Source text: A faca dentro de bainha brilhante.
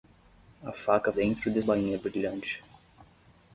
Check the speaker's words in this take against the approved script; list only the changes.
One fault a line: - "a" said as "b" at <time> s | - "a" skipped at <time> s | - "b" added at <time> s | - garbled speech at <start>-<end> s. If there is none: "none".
none